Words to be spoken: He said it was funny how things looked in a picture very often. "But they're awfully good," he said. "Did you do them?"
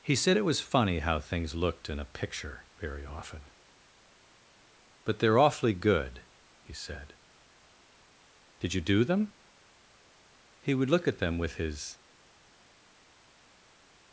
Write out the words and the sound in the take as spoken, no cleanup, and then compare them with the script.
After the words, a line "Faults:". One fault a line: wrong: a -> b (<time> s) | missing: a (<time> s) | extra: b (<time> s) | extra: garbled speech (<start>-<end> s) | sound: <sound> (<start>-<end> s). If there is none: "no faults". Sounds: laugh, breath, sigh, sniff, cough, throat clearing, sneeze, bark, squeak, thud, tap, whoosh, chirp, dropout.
He said it was funny how things looked in a picture very often. "But they're awfully good," he said. "Did you do them?" He would look at them with his
Faults:
extra: He would look at them with his (10.6 s)